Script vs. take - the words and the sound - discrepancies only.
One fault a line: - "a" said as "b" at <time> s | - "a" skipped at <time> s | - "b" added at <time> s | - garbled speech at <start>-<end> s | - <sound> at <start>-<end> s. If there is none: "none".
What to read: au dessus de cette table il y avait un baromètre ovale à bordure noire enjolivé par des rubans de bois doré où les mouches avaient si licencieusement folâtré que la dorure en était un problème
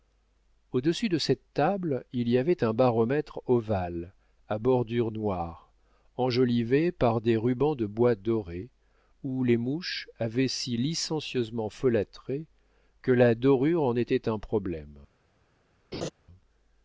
- laugh at 15.9-16.1 s